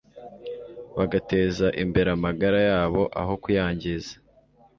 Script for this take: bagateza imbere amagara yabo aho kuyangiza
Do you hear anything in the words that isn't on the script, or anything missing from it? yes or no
no